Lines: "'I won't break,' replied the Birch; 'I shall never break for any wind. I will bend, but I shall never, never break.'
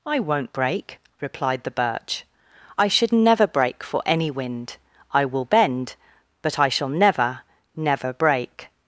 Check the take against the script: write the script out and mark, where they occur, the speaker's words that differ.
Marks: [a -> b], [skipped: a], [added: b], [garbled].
"'I won't break,' replied the Birch; 'I [shall -> should] never break for any wind. I will bend, but I shall never, never break.'